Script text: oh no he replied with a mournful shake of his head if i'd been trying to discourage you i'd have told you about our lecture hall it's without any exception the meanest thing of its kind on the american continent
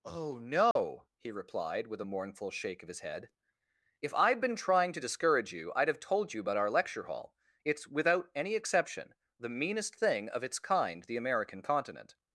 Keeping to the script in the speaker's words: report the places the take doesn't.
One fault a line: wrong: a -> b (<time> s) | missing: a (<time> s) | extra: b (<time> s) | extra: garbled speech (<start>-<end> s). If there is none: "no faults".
missing: on (11.0 s)